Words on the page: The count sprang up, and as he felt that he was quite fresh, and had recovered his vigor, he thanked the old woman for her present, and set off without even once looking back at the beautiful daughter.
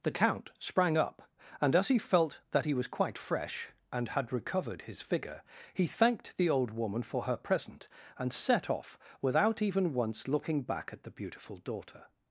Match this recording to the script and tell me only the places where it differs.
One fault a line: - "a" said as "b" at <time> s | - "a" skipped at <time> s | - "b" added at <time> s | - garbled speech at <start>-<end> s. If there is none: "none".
- "vigor" said as "figure" at 5.0 s